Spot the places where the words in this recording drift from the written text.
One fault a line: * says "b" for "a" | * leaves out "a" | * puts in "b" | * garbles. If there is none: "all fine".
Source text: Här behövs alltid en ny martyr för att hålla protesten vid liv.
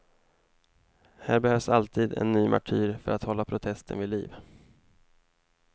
all fine